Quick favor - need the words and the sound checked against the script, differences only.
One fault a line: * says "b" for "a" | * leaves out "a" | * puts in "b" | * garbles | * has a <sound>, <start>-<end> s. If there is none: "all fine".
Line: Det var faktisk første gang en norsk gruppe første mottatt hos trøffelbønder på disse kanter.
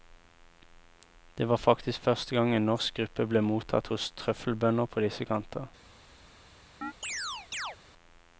* says "ble" for "første"
* has a chirp, 6.8-7.8 s